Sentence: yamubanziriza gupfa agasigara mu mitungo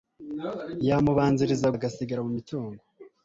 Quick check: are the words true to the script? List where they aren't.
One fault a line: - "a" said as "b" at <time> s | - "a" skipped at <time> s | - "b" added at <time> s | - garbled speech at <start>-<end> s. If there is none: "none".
- "gupfa" skipped at 1.7 s